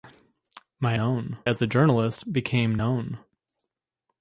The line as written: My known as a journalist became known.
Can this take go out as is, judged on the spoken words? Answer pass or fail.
pass